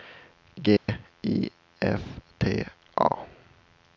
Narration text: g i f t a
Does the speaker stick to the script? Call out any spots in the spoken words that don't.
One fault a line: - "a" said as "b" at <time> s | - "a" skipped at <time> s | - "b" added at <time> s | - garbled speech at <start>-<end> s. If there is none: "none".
none